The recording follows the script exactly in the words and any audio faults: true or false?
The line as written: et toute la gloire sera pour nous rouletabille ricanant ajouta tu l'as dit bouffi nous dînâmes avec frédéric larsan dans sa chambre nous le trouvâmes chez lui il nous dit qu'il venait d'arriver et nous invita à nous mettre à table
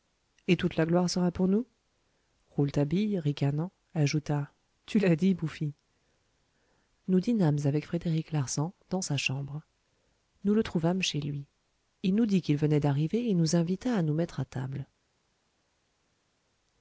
true